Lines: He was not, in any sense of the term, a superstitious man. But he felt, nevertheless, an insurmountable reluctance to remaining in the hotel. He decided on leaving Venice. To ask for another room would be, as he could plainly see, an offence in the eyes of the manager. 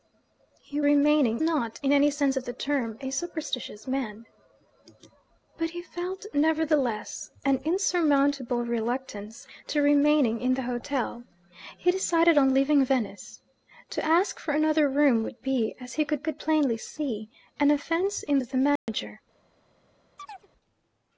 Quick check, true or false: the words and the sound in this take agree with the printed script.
false